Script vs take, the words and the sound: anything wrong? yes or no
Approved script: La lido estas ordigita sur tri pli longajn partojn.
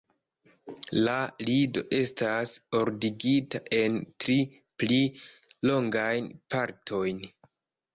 yes